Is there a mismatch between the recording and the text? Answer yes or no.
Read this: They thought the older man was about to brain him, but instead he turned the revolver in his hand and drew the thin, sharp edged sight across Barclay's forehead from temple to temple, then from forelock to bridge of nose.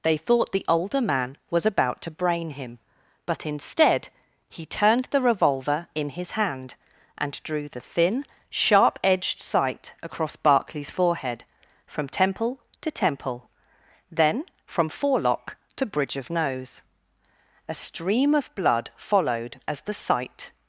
yes